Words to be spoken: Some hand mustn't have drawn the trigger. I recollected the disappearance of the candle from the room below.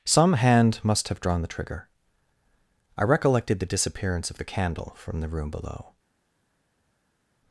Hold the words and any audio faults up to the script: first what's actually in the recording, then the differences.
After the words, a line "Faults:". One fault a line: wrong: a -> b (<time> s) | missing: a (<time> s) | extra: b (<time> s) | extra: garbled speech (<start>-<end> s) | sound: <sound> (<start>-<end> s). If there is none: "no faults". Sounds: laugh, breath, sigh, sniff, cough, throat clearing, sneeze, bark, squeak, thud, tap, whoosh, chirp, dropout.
Some hand must have drawn the trigger. I recollected the disappearance of the candle from the room below.
Faults:
wrong: mustn't -> must (0.8 s)